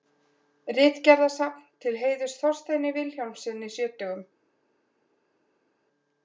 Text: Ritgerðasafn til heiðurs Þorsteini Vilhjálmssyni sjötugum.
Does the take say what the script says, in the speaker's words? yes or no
yes